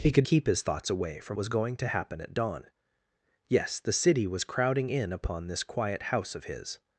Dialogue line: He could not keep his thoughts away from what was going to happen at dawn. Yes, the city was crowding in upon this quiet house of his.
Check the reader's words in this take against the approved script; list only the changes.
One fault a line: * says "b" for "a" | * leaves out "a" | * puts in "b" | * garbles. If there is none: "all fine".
* leaves out "not"
* leaves out "what"